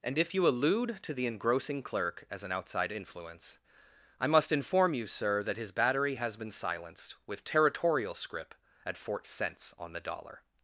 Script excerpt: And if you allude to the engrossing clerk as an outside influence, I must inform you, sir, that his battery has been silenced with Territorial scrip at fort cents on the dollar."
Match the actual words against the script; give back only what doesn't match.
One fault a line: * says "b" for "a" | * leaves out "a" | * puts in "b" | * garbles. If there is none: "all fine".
all fine